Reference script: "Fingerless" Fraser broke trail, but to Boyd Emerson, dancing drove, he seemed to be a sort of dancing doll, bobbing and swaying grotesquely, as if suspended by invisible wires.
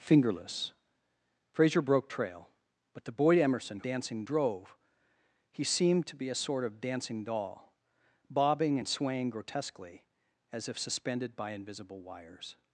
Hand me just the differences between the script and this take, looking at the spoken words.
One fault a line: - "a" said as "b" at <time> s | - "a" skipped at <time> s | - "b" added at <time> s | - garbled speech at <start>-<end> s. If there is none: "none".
none